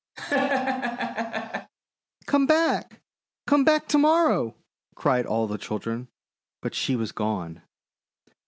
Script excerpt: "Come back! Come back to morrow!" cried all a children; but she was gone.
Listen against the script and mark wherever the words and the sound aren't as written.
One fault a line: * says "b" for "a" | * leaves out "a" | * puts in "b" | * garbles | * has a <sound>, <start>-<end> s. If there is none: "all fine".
* has a laugh, 0.2-1.7 s
* says "the" for "a"